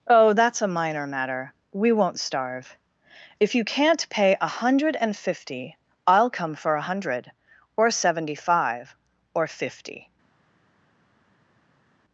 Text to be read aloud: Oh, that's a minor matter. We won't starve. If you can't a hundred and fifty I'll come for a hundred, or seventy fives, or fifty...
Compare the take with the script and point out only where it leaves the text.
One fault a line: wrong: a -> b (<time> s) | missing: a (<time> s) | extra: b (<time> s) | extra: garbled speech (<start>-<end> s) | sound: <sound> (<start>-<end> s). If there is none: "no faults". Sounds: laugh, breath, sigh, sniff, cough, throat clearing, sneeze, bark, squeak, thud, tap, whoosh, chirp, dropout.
extra: pay (4.1 s)
wrong: fives -> five (8.4 s)